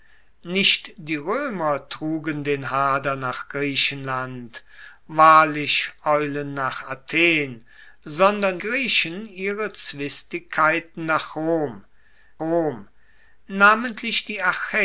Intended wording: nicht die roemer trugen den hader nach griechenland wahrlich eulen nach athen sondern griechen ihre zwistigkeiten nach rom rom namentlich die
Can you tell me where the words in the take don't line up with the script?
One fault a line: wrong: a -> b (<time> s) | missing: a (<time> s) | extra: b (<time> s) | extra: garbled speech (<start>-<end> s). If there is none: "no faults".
no faults